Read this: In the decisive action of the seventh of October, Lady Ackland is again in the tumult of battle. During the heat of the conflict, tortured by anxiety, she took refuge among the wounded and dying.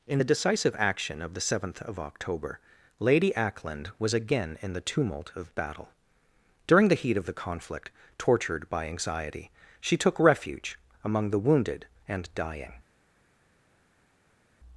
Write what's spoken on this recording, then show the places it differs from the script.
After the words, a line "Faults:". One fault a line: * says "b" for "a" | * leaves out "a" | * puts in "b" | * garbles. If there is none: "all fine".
In the decisive action of the seventh of October, Lady Ackland was again in the tumult of battle. During the heat of the conflict, tortured by anxiety, she took refuge among the wounded and dying.
Faults:
* says "was" for "is"